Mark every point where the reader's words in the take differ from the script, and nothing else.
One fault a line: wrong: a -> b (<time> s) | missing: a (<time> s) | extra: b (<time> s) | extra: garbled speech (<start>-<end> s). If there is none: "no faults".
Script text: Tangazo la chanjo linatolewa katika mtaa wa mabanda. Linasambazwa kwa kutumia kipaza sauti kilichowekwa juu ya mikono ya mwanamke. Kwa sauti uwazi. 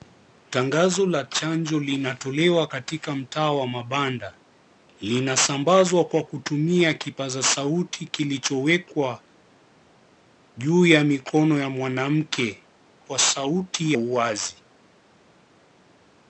no faults